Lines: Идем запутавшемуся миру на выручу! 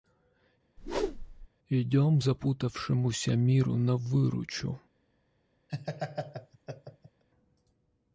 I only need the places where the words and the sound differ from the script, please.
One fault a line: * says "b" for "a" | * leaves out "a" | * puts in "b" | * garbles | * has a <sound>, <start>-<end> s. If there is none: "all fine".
* has a whoosh, 0.8-1.5 s
* has a laugh, 5.7-7.2 s